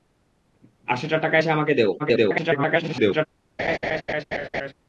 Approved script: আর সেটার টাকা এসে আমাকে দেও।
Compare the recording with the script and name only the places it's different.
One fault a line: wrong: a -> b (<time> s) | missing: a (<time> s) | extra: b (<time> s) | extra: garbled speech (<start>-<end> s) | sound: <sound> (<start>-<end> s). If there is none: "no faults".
extra: garbled speech (2.0-3.3 s)
sound: laugh (3.6-4.7 s)